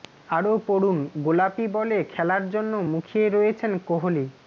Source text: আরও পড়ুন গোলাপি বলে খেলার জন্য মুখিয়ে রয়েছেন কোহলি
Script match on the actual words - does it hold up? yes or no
yes